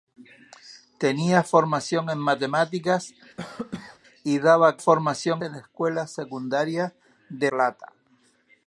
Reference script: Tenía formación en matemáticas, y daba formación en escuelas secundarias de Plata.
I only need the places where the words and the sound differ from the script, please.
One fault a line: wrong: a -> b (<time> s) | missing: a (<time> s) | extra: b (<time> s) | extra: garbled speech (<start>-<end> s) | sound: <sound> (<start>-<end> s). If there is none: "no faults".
sound: cough (3.4-4.0 s)